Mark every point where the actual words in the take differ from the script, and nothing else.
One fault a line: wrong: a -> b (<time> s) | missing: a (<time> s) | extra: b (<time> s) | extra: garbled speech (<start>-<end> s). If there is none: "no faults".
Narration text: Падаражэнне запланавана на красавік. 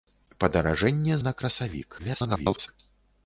missing: запланавана (1.2 s)
extra: garbled speech (2.0-2.7 s)